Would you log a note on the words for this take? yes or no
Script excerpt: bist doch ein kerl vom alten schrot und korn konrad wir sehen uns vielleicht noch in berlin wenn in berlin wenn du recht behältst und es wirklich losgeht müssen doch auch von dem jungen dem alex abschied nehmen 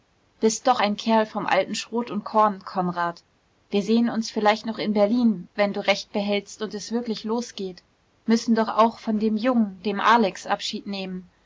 yes